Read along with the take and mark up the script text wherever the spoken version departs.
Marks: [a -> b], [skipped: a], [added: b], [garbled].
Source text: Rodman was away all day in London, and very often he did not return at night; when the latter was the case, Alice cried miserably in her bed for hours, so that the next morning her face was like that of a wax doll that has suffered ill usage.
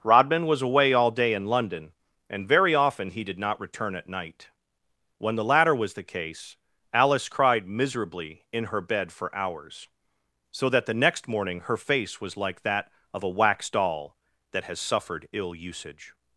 Rodman was away all day in London, and very often he did not return at night; when the latter was the case, Alice cried miserably in her bed for hours, so that the next morning her face was like that of a wax doll that has suffered ill usage.